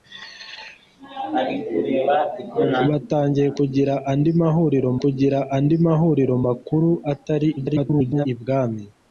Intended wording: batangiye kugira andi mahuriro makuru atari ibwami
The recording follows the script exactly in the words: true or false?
false